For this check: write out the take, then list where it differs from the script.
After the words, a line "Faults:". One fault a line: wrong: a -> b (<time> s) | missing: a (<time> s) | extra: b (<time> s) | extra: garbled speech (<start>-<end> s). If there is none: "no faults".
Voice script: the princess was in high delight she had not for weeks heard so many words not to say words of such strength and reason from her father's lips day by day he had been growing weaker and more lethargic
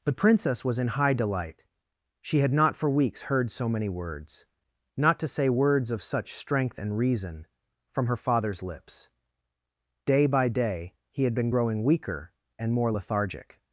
the princess was in high delight she had not for weeks heard so many words not to say words of such strength and reason from her father's lips day by day he had been growing weaker and more lethargic
Faults:
no faults